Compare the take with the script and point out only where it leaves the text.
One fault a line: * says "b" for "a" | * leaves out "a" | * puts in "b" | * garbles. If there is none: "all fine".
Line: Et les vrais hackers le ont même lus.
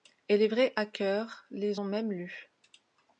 * says "les" for "le"